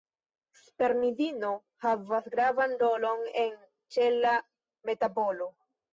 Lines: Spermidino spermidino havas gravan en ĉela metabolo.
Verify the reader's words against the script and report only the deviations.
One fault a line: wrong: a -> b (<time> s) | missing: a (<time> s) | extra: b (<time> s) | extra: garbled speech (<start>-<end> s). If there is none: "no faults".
missing: spermidino (1.5 s)
extra: rolon (2.9 s)